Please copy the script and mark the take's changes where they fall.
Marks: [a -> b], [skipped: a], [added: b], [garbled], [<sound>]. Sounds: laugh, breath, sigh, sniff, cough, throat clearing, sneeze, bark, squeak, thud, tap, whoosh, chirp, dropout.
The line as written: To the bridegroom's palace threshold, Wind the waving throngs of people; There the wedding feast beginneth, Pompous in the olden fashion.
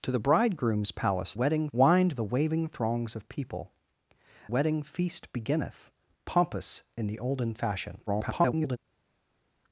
To the bridegroom's palace [threshold, -> wedding] Wind the waving throngs of people; [skipped: There the] wedding feast beginneth, Pompous in the olden fashion. [garbled]